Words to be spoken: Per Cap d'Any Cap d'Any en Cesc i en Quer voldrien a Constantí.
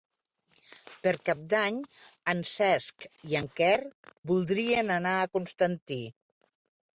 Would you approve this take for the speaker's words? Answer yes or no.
no